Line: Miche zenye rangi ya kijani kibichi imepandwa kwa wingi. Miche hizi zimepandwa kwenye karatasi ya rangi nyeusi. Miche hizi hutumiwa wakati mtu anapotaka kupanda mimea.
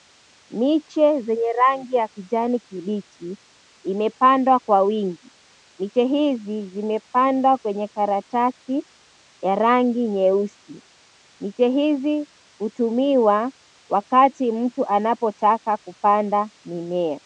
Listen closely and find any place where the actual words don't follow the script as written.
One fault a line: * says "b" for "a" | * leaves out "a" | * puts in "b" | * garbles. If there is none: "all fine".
all fine